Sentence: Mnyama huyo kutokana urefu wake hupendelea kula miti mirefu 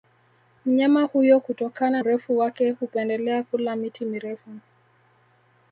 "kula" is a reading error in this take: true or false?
false